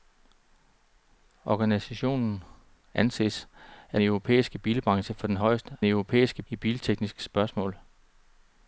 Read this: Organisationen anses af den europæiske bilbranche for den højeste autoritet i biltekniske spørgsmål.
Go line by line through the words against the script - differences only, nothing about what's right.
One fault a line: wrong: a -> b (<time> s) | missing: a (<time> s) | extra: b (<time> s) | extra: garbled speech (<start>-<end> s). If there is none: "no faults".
missing: den (4.0 s)
wrong: autoritet -> europæiske (5.8 s)